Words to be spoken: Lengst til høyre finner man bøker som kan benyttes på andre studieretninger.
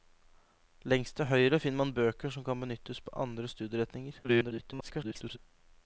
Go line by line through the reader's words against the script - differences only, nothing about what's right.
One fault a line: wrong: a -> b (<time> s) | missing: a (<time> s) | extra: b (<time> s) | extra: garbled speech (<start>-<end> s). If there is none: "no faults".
extra: garbled speech (4.2-5.4 s)